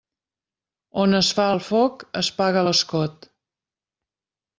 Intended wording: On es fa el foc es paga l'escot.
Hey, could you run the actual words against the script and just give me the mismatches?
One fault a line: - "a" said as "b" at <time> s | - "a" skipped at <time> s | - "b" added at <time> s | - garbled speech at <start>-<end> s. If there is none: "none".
none